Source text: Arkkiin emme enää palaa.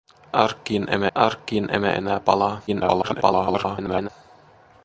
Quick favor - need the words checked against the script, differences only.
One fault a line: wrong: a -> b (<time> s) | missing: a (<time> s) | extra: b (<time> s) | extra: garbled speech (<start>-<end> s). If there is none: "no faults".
extra: arkkiin emme (1.2 s)
extra: garbled speech (2.7-4.1 s)